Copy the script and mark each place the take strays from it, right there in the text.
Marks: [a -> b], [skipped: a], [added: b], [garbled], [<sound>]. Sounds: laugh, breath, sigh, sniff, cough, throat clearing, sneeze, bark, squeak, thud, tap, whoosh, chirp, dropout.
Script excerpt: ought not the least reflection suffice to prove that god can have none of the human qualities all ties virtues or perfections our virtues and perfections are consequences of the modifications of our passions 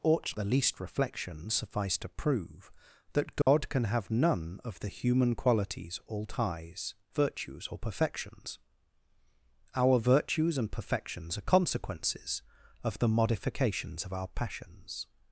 ought [skipped: not] the least reflection suffice to prove that god [dropout] can have none of the human qualities all ties virtues or perfections our virtues and perfections are consequences of the modifications of our passions